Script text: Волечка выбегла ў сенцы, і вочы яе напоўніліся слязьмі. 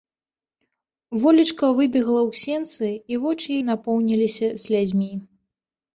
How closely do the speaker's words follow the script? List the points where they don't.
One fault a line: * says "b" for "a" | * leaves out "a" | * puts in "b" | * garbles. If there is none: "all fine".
* leaves out "яе"